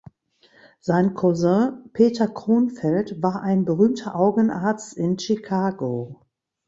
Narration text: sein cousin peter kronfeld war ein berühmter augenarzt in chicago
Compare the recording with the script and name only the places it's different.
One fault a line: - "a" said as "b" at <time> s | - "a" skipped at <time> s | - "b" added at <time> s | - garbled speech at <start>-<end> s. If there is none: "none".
none